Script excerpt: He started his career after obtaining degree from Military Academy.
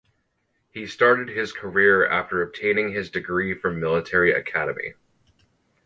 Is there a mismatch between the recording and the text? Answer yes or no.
yes